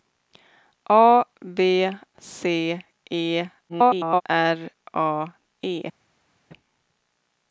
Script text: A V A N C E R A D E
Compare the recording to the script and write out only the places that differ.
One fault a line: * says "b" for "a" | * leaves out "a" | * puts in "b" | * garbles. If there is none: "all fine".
* leaves out "A N"
* garbles
* leaves out "D"